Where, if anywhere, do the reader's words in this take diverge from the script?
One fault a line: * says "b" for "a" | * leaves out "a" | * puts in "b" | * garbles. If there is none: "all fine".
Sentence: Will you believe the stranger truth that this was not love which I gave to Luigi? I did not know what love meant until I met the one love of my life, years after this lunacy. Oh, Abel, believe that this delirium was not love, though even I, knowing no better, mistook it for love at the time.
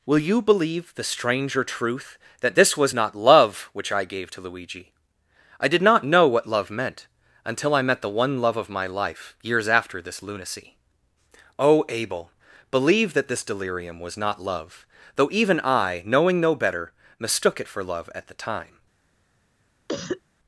all fine